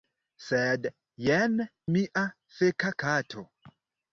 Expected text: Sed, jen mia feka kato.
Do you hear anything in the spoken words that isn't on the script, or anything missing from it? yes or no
no